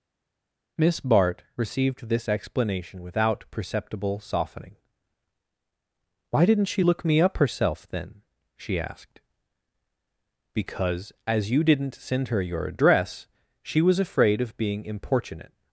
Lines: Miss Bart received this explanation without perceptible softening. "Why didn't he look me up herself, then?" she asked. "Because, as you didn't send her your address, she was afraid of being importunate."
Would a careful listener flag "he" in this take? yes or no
yes